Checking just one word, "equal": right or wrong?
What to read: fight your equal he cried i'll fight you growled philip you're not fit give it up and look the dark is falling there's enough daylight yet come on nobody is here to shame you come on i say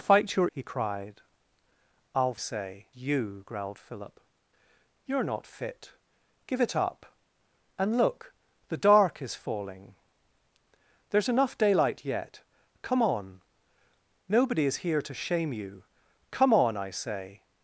wrong